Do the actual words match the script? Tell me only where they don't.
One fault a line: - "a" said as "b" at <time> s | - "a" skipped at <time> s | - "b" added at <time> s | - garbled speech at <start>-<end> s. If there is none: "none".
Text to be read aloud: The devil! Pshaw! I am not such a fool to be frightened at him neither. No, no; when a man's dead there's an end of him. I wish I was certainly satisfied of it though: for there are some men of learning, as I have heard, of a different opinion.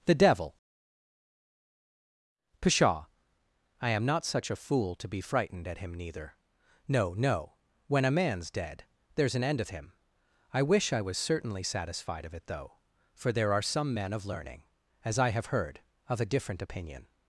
none